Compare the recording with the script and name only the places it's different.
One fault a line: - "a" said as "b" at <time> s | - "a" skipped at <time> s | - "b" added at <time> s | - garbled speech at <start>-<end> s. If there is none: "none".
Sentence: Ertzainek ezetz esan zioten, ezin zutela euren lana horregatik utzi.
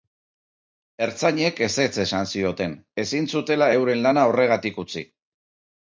none